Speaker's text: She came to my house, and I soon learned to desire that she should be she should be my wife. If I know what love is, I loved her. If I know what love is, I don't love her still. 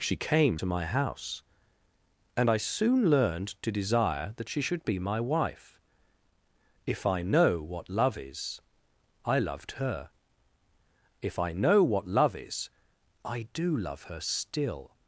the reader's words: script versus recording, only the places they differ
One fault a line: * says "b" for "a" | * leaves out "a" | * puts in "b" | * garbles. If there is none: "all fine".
* leaves out "she should be"
* says "do" for "don't"